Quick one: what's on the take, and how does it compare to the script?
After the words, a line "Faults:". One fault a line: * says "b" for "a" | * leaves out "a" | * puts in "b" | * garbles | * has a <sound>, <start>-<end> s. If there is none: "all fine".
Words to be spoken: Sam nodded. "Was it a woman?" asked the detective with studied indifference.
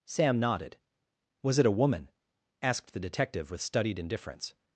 Sam nodded. "Was it a woman?" asked the detective with studied indifference.
Faults:
all fine